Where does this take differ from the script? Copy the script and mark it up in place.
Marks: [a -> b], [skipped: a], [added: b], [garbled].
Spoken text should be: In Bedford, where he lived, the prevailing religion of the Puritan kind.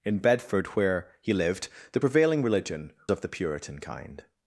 In Bedford, where he lived, the prevailing religion of the Puritan kind.